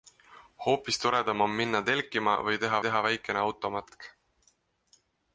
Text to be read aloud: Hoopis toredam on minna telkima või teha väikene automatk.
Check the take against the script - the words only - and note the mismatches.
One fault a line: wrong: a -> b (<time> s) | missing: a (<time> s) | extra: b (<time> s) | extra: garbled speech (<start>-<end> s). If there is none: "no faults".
extra: teha (2.9 s)